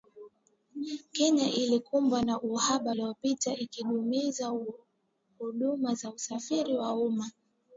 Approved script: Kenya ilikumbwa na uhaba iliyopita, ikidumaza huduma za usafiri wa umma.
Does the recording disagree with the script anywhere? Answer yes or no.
no